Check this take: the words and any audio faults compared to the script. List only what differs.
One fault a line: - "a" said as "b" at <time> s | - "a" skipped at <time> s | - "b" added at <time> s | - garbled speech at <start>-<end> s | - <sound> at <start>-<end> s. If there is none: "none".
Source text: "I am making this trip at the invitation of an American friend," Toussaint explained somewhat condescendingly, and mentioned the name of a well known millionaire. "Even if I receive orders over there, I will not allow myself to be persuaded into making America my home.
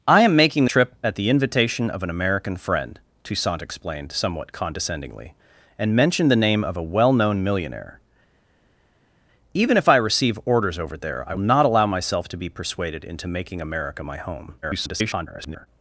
- "this" skipped at 0.7 s
- "will" skipped at 11.3 s
- garbled speech at 14.6-15.7 s